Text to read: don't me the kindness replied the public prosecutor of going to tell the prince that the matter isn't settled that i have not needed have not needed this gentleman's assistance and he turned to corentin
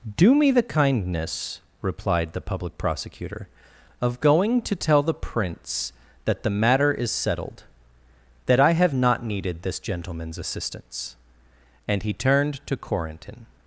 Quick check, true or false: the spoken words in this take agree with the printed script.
false